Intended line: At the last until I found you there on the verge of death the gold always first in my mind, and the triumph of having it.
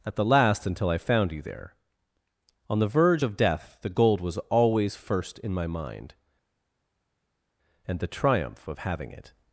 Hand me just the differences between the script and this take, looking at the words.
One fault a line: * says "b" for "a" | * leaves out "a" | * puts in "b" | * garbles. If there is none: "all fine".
* puts in "was"